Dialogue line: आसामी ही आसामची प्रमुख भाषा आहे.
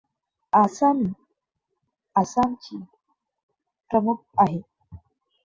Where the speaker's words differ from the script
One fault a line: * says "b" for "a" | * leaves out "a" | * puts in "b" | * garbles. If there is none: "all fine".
* leaves out "ही"
* leaves out "भाषा"